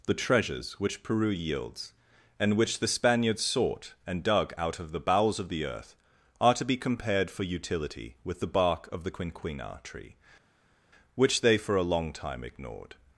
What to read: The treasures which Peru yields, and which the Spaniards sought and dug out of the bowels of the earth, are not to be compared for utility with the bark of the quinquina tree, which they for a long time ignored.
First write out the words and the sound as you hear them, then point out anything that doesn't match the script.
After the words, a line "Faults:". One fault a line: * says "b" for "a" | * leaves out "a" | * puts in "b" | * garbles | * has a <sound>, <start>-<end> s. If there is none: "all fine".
The treasures which Peru yields, and which the Spaniards sought and dug out of the bowels of the earth, are to be compared for utility with the bark of the quinquina tree, which they for a long time ignored.
Faults:
* leaves out "not"